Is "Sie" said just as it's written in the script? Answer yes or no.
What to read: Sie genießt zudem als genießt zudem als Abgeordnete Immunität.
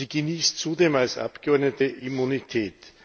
yes